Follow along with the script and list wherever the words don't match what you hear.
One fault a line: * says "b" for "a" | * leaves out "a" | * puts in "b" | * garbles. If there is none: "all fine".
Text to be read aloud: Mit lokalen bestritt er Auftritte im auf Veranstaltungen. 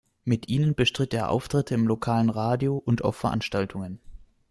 * says "ihnen" for "lokalen"
* puts in "lokalen Radio und"